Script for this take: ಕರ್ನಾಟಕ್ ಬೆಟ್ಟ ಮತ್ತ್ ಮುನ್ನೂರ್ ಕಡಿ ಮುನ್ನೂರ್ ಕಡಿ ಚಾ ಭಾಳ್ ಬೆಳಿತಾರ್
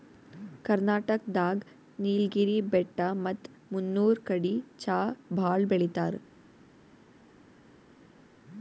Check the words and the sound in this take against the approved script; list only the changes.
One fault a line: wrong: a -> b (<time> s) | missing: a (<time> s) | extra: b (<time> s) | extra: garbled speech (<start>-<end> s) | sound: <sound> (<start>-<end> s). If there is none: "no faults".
extra: ದಾಗ್ ನೀಲ್ಗಿರಿ (1.4 s)
missing: ಮುನ್ನೂರ್ ಕಡಿ (4.5 s)